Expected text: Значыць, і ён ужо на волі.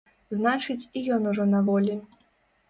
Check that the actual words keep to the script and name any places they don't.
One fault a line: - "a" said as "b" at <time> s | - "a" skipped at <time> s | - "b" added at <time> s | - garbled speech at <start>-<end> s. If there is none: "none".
none